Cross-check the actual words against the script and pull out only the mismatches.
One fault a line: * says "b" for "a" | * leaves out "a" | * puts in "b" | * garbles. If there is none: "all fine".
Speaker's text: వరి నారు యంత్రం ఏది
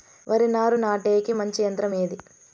* puts in "నాటేకి మంచి"